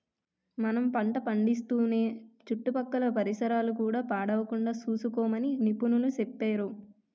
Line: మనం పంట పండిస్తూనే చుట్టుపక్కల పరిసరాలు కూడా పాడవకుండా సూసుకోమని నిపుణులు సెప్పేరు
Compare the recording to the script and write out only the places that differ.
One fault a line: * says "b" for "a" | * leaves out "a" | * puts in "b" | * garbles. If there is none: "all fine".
all fine